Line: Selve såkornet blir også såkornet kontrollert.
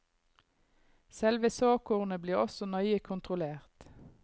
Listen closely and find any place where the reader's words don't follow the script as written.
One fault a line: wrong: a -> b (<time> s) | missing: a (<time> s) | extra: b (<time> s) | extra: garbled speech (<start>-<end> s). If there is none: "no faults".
wrong: såkornet -> nøye (2.6 s)